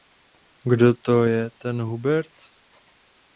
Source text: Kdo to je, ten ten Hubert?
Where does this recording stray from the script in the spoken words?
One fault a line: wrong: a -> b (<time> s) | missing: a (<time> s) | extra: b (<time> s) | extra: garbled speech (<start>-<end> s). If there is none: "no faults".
missing: ten (1.8 s)